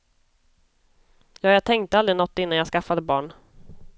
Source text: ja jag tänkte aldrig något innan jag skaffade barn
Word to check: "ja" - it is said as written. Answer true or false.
true